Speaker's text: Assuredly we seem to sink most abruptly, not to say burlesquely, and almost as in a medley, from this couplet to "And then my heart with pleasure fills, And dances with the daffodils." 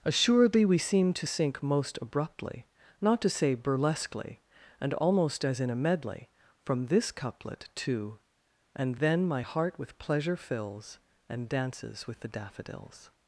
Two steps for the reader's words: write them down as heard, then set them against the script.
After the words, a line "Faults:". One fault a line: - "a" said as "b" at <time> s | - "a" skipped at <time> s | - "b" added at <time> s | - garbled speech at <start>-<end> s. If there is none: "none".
Assuredly we seem to sink most abruptly, not to say burlesquely, and almost as in a medley, from this couplet to "And then my heart with pleasure fills, And dances with the daffodils."
Faults:
none